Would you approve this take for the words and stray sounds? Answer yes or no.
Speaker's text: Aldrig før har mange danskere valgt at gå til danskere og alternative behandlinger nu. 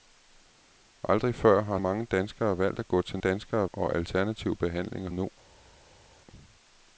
yes